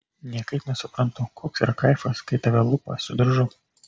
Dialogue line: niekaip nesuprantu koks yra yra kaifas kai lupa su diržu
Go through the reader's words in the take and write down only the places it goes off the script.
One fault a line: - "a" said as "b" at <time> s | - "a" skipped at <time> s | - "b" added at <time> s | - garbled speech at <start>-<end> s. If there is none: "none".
- "yra" skipped at 1.7 s
- "tave" added at 2.5 s